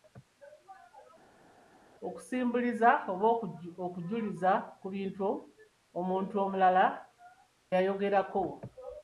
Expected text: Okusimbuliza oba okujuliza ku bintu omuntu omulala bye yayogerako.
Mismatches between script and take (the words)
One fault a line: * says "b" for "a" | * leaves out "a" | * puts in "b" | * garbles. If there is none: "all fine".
* leaves out "bye"